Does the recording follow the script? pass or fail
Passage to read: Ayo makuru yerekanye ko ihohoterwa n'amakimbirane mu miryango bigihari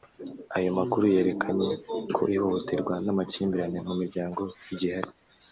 pass